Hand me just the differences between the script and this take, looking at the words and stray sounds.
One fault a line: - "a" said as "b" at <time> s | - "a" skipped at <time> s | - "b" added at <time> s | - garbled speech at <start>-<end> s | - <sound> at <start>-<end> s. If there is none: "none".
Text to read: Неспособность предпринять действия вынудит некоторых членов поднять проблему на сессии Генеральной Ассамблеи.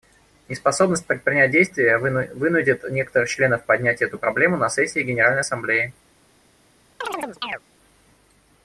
- "эту" added at 4.0 s
- chirp at 7.0-7.6 s